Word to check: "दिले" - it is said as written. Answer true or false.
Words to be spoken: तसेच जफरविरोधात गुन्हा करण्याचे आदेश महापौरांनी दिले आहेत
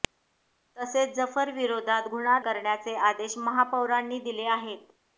true